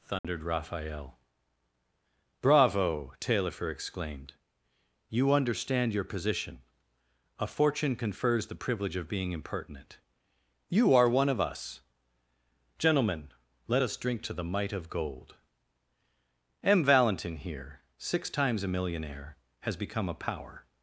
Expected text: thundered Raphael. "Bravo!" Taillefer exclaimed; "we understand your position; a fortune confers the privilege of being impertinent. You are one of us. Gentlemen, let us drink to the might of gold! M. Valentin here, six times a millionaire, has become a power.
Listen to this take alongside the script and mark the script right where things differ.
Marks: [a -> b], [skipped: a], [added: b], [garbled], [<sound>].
thundered [dropout] Raphael. "Bravo!" Taillefer exclaimed; ["we -> you] understand your position; a fortune confers the privilege of being impertinent. You are one of us. Gentlemen, let us drink to the might of gold! M. Valentin here, six times a millionaire, has become a power.